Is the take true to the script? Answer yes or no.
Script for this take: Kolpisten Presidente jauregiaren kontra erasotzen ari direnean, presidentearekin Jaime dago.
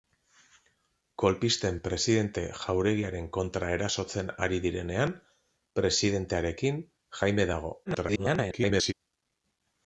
no